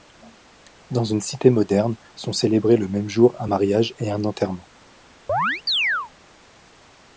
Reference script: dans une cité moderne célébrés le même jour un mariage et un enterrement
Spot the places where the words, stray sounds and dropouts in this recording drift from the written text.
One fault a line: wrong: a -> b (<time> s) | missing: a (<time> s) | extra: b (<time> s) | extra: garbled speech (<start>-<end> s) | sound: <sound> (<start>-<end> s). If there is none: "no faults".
extra: sont (2.2 s)
sound: chirp (5.3-6.1 s)